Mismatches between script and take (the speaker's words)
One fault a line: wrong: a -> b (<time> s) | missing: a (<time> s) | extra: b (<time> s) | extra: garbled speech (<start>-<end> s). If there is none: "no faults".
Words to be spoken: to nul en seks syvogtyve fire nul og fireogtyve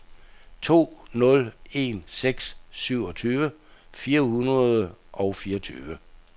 wrong: nul -> hundrede (4.2 s)